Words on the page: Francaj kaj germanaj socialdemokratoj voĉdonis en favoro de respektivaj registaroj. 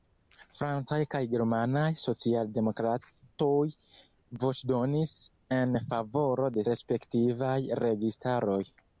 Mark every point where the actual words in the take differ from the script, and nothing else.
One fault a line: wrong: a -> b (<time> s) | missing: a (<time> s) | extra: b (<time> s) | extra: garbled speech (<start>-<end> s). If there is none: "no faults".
no faults